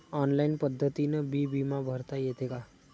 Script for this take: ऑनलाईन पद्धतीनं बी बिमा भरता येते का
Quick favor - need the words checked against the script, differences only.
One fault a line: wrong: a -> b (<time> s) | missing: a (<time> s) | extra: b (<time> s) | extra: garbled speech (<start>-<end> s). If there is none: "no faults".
no faults